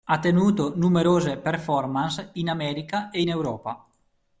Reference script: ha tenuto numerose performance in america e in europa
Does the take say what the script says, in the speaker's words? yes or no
yes